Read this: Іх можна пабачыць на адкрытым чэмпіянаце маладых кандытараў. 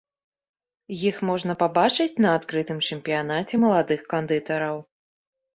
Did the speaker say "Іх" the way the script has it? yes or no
yes